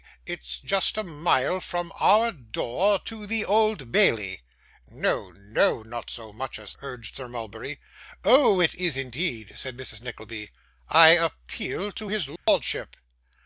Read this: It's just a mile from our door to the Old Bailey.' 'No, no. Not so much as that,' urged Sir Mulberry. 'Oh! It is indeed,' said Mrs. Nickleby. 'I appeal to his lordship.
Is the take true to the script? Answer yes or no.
no